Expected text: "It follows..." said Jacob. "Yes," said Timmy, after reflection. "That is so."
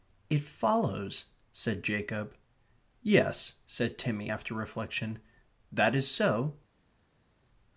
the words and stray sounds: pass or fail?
pass